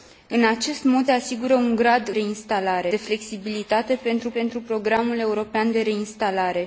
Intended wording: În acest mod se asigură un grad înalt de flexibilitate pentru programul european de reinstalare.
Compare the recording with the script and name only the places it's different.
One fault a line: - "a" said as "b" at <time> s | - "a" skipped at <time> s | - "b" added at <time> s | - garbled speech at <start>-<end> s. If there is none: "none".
- "se" skipped at 1.1 s
- "înalt" said as "reinstalare" at 2.1 s
- "pentru" added at 4.3 s